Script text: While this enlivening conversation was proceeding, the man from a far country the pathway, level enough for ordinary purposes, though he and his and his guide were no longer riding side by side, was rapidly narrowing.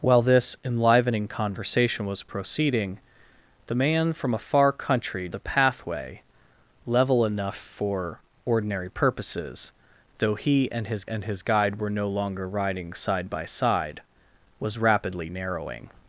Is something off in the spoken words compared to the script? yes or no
no